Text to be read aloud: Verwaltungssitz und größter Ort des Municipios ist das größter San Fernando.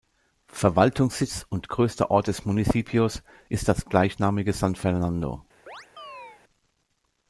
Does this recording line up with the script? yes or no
no